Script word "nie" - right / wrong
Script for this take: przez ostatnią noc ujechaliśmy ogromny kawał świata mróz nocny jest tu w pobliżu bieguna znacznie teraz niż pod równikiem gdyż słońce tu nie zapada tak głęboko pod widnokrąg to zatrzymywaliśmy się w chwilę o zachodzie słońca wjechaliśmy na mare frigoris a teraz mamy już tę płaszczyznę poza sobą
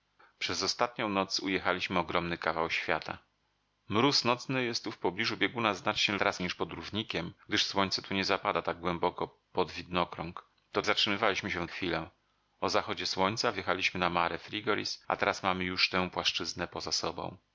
right